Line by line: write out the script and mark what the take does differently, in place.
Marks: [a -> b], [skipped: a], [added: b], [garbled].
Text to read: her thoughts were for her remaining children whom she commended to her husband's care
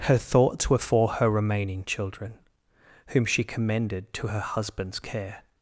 her thoughts were for her remaining children whom she commended to her husband's care